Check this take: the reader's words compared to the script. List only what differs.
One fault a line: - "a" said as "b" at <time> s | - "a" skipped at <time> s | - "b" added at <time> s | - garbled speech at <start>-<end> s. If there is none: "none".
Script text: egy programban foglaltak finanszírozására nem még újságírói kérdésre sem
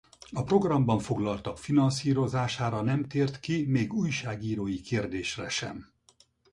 - "egy" said as "a" at 0.3 s
- "tért ki" added at 3.1 s